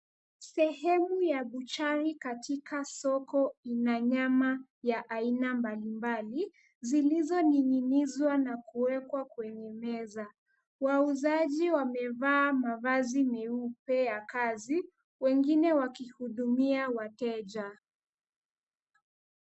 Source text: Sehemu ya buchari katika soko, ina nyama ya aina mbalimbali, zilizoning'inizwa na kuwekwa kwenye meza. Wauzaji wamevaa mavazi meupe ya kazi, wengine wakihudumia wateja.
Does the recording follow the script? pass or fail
pass